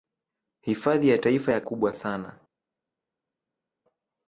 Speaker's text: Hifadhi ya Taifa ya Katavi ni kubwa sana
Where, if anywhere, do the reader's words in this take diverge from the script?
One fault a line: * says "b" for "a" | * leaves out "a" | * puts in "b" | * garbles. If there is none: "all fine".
* leaves out "Katavi ni"